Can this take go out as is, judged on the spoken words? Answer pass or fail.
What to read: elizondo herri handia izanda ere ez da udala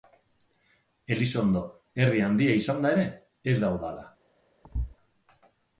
pass